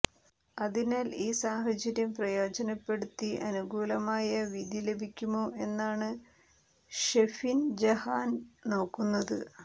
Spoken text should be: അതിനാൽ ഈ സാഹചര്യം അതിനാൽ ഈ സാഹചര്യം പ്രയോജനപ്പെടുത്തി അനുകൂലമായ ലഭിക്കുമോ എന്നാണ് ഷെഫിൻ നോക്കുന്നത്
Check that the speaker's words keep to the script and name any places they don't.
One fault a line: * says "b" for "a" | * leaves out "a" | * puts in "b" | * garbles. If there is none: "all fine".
* leaves out "അതിനാൽ ഈ സാഹചര്യം"
* puts in "വിധി"
* puts in "ജഹാൻ"